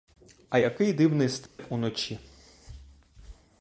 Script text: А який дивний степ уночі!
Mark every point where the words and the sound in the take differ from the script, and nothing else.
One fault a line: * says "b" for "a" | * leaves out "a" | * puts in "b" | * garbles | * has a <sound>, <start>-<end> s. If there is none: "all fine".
* has a dropout, 1.5-1.6 s